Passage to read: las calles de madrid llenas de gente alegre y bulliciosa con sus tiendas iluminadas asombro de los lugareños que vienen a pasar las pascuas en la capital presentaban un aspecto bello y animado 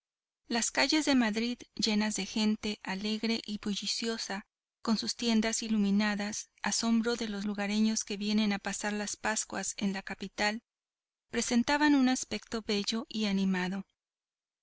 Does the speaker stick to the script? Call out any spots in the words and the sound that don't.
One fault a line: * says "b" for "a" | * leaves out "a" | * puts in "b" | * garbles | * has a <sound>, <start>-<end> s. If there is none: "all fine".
all fine